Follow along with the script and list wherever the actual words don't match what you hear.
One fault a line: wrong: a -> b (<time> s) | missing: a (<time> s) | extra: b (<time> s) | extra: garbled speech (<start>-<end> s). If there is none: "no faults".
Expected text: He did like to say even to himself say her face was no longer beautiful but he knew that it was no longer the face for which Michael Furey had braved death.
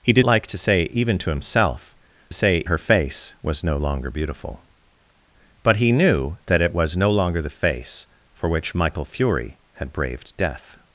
no faults